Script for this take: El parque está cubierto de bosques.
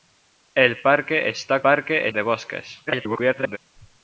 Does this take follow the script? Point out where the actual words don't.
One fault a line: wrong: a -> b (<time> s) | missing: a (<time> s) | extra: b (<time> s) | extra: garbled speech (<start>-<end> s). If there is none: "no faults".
wrong: cubierto -> parque (1.6 s)
extra: garbled speech (2.9-3.6 s)